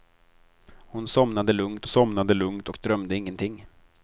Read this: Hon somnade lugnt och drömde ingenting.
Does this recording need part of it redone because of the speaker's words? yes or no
yes